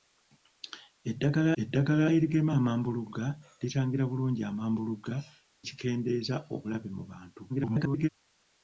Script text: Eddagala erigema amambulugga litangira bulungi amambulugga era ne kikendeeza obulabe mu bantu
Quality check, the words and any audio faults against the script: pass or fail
fail